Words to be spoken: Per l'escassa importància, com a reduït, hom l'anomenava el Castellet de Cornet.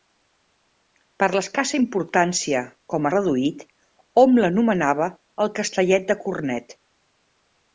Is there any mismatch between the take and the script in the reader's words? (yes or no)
no